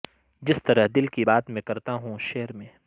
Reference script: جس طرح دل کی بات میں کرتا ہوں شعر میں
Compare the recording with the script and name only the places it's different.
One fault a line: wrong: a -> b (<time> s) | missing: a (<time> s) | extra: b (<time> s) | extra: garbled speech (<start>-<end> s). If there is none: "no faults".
no faults